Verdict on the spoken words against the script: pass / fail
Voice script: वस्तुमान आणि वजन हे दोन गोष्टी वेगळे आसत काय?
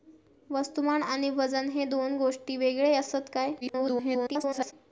fail